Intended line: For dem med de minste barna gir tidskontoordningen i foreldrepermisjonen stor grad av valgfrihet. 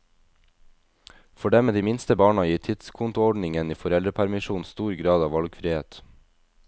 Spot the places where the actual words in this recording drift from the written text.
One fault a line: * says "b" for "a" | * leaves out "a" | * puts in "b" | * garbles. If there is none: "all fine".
all fine